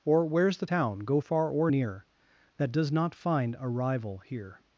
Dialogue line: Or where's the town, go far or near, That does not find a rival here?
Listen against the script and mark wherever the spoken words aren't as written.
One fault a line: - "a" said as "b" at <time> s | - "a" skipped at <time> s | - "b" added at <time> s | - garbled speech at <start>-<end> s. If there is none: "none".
none